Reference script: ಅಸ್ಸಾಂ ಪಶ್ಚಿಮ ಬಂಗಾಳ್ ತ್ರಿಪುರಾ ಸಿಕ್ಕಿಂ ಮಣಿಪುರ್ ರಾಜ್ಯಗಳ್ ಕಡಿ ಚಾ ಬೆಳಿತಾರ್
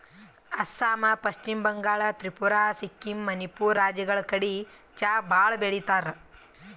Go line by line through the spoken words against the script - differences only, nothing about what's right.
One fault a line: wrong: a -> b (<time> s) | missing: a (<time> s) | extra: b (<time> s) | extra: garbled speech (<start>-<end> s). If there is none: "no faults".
extra: ಭಾಳ್ (5.3 s)